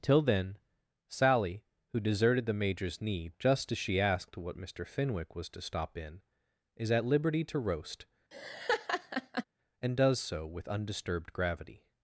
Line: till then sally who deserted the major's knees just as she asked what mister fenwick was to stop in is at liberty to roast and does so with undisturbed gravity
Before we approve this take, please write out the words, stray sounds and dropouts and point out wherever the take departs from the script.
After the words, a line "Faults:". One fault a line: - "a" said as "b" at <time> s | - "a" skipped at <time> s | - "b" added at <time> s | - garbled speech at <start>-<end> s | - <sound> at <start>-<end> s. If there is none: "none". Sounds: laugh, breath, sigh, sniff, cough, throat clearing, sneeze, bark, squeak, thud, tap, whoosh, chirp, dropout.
till then sally who deserted the major's knee just as she asked what mister fenwick was to stop in is at liberty to roast and does so with undisturbed gravity
Faults:
- "knees" said as "knee" at 3.0 s
- laugh at 8.3-9.4 s